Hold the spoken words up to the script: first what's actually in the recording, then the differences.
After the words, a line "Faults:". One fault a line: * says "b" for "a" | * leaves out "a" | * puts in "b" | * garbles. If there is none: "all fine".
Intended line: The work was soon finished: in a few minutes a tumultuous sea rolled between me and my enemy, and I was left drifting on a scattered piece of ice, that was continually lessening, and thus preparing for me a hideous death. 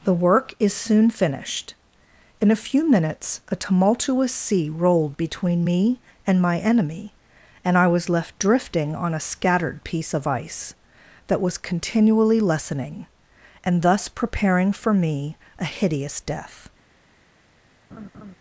The work is soon finished: in a few minutes a tumultuous sea rolled between me and my enemy, and I was left drifting on a scattered piece of ice, that was continually lessening, and thus preparing for me a hideous death.
Faults:
* says "is" for "was"